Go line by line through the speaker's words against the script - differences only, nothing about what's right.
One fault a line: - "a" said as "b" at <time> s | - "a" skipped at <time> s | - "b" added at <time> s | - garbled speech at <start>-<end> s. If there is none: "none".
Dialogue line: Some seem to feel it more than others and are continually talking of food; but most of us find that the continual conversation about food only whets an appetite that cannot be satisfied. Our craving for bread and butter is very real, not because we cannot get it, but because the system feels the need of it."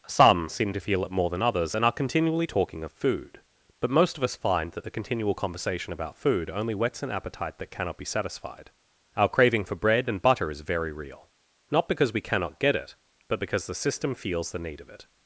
none